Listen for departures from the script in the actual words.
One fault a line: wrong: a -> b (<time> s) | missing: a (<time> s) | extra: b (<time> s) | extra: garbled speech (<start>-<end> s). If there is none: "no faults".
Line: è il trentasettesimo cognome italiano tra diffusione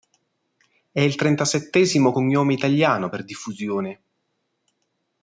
wrong: tra -> per (3.1 s)